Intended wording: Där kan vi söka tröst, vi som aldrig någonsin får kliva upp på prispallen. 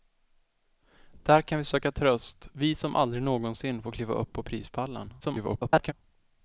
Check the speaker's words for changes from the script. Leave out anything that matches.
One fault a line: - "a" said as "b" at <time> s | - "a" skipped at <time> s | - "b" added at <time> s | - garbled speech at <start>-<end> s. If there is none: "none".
- garbled speech at 5.2-5.9 s